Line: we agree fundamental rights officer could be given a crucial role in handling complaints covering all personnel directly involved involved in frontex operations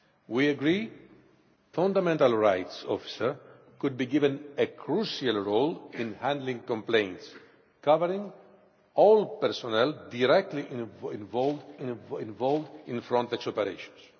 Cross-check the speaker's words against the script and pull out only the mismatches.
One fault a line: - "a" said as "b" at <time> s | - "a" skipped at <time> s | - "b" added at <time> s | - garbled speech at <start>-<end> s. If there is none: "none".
none